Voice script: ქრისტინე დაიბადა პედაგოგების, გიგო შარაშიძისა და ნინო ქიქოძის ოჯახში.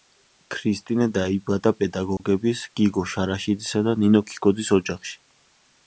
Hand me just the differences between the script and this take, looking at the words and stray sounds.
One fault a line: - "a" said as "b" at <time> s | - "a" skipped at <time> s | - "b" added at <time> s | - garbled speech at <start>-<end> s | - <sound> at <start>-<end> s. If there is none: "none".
- dropout at 2.2-2.2 s